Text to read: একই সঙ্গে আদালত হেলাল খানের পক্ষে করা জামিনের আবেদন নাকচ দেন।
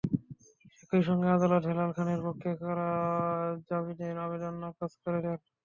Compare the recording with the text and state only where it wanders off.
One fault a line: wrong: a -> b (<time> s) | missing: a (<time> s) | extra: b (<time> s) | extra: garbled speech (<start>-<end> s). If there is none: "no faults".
extra: করে (5.0 s)